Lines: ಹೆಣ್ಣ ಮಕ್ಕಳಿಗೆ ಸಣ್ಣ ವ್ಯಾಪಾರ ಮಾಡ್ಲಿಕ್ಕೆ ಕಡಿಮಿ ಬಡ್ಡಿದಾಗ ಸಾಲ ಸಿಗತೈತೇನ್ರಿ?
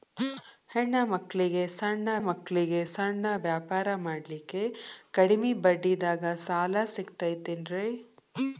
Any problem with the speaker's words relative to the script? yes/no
yes